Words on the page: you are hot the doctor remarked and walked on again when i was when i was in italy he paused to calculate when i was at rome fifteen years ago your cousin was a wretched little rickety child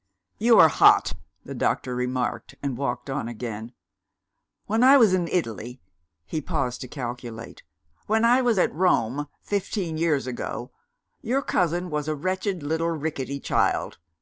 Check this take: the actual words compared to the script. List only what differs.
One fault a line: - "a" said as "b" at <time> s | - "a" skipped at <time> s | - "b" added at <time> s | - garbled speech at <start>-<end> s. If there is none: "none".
- "when i was" skipped at 5.1 s